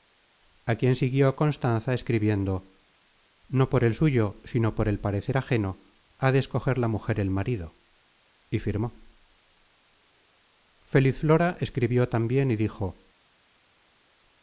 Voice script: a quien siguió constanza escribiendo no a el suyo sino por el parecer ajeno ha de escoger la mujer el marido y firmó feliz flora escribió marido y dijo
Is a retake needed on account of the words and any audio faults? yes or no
yes